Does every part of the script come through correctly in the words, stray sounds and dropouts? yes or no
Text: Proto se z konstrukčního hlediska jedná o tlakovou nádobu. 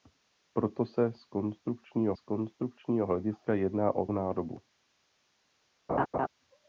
no